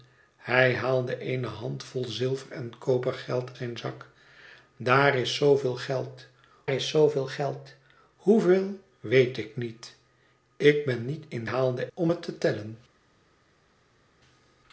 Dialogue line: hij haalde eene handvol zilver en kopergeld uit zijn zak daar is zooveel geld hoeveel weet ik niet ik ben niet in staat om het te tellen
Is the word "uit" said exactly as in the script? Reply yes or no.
no